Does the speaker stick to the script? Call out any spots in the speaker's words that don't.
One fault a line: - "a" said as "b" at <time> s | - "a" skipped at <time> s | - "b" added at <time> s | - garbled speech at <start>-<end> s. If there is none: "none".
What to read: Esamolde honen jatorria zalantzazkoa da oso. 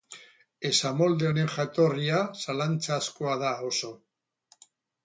none